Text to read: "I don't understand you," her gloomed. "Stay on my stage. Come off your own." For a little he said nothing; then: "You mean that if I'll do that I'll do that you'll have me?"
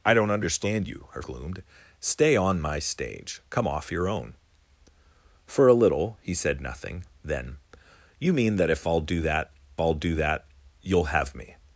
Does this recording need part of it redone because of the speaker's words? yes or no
no